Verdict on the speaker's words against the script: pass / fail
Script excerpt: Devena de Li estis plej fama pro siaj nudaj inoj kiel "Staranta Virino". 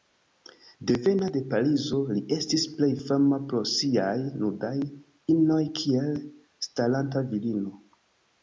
fail